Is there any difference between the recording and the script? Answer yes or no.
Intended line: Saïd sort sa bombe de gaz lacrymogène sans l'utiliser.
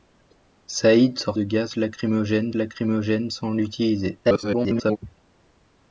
yes